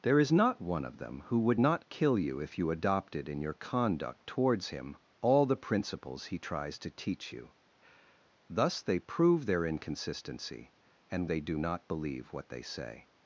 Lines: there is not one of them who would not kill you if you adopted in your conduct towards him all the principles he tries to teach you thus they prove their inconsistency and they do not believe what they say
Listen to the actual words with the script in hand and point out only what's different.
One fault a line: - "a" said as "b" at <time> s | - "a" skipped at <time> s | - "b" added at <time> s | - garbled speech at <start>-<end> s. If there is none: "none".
none